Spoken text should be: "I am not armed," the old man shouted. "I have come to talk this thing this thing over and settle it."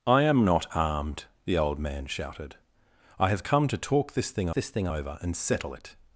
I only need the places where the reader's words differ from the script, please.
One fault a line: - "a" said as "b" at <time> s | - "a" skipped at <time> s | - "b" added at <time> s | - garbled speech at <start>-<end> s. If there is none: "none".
none